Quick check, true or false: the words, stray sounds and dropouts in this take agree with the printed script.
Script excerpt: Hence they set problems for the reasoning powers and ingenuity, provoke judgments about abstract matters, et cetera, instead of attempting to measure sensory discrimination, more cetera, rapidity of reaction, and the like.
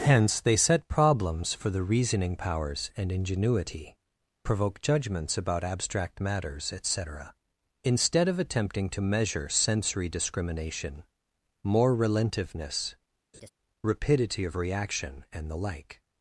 false